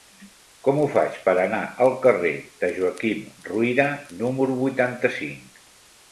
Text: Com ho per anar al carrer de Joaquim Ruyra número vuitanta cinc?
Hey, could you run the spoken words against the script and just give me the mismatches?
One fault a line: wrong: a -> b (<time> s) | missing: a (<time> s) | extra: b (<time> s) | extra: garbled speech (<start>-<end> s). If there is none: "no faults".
extra: faig (0.9 s)